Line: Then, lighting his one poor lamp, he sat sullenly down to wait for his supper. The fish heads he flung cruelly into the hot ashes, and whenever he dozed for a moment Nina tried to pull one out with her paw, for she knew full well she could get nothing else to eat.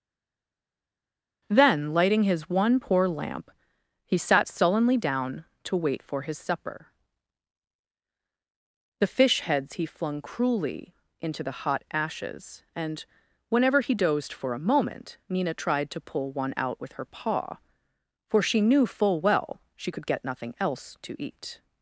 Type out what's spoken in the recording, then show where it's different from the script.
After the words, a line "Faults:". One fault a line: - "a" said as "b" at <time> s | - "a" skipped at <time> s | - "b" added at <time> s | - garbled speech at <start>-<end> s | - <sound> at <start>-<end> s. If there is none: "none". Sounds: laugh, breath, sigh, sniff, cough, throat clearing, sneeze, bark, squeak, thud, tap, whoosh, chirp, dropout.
Then, lighting his one poor lamp, he sat sullenly down to wait for his supper. The fish heads he flung cruelly into the hot ashes, and whenever he dozed for a moment Nina tried to pull one out with her paw, for she knew full well she could get nothing else to eat.
Faults:
none